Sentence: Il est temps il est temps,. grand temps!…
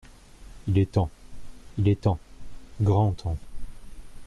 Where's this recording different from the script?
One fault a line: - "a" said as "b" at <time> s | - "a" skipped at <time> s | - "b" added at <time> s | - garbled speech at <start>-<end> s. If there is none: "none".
none